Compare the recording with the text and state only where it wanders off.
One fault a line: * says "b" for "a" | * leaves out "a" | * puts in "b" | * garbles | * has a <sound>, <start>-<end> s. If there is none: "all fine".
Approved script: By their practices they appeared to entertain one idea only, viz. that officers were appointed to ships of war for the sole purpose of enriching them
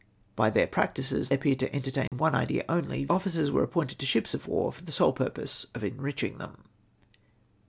* leaves out "they"
* has a dropout, 2.1-2.1 s
* leaves out "viz that"